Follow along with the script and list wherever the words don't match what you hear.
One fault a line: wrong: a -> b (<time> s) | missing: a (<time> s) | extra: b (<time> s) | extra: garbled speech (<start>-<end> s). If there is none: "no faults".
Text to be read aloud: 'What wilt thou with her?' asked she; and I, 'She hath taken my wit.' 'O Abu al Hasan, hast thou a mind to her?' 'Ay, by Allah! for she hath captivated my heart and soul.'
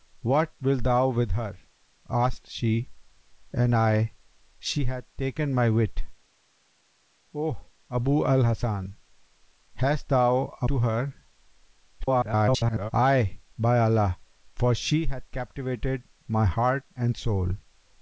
missing: mind (10.7 s)
extra: garbled speech (12.0-12.9 s)